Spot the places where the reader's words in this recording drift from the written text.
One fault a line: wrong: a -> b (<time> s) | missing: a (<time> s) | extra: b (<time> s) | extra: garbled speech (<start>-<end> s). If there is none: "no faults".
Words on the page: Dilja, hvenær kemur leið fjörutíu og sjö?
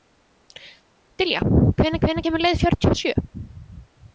extra: hvenær (2.0 s)